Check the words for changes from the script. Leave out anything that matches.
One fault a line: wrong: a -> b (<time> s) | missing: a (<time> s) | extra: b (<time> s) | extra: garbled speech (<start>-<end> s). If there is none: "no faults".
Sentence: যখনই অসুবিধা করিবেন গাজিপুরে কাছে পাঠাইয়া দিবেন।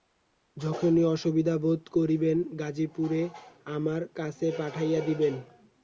extra: বোধ (1.6 s)
extra: আমার (3.7 s)